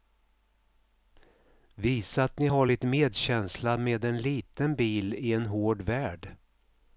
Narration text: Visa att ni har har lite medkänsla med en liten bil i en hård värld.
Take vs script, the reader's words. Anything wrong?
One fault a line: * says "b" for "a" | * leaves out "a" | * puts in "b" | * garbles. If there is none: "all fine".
* leaves out "har"